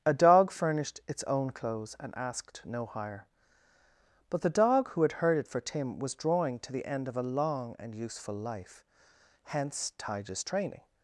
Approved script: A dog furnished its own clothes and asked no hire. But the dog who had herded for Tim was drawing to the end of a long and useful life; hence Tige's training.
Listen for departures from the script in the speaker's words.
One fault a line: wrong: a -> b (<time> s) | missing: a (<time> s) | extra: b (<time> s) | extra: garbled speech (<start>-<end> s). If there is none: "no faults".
no faults